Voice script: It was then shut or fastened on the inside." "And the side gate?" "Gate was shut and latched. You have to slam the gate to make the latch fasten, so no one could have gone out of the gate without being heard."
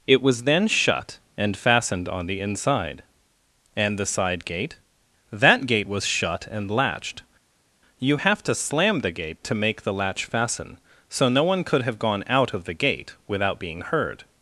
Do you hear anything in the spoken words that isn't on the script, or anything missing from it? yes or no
yes